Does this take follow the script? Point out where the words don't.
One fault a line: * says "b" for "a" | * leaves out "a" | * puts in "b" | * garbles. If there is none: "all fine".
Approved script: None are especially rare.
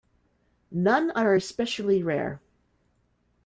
all fine